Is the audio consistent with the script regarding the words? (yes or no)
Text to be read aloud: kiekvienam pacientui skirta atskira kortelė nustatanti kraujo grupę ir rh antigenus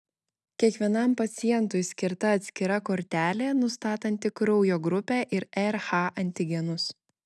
yes